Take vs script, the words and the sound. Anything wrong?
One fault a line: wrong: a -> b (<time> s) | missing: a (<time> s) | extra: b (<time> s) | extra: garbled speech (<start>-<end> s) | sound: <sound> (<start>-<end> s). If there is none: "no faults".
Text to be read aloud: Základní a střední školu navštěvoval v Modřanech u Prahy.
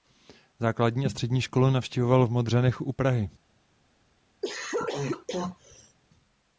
sound: cough (4.4-6.0 s)